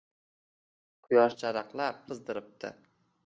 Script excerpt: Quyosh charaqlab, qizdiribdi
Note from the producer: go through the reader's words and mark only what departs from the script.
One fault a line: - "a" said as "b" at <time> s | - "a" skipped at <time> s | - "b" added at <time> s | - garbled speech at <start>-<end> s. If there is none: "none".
none